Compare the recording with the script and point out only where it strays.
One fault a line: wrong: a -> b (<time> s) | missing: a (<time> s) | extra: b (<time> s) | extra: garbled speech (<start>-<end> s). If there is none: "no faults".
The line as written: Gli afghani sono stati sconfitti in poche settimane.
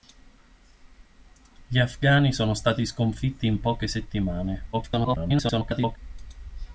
extra: garbled speech (4.7-6.0 s)